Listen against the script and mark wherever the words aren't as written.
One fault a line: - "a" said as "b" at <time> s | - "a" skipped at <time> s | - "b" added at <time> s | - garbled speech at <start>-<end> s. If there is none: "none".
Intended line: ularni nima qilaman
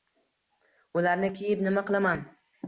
- "kiyib" added at 1.3 s